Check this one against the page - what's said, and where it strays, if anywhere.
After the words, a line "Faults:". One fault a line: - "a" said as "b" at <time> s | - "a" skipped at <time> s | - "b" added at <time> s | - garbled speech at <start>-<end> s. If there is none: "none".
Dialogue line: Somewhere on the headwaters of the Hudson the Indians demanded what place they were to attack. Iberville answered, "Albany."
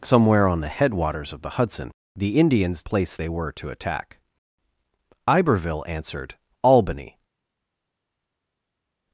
Somewhere on the headwaters of the Hudson the Indians place they were to attack. Iberville answered, "Albany."
Faults:
- "demanded what" skipped at 2.8 s